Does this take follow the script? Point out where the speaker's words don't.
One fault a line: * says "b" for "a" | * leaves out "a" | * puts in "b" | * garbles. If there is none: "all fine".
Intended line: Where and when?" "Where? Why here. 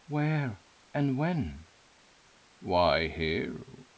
* leaves out "Where"